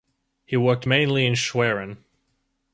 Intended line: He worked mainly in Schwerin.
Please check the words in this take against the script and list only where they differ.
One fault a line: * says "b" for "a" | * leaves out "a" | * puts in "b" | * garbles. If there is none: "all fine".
all fine